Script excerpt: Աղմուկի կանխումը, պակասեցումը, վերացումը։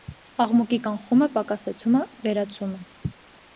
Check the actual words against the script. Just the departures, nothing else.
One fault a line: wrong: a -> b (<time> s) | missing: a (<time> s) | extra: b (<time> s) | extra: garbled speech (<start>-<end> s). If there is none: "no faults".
no faults